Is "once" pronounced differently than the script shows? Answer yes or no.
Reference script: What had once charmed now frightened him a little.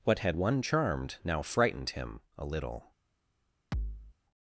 yes